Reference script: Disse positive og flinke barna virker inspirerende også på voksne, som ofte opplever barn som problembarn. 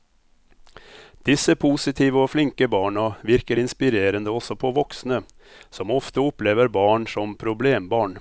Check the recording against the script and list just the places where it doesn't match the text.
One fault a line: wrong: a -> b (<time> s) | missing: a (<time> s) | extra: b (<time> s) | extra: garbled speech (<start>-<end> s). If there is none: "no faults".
no faults